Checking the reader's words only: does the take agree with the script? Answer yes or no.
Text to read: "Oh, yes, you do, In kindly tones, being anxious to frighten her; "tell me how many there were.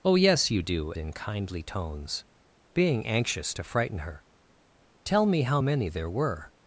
yes